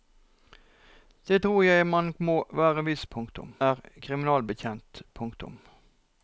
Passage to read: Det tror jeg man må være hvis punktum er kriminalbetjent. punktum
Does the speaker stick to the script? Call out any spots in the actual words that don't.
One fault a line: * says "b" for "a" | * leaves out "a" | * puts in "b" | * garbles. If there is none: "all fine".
all fine